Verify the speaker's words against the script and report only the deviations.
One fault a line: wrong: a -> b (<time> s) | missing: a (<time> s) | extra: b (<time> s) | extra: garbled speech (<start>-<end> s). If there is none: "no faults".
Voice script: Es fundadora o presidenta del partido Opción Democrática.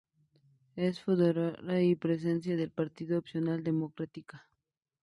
wrong: o -> y (1.8 s)